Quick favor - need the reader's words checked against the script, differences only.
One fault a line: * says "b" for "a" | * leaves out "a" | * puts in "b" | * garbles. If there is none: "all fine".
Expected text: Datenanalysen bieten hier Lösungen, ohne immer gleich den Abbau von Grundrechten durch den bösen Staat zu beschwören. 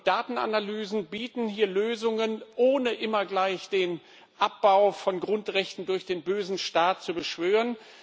all fine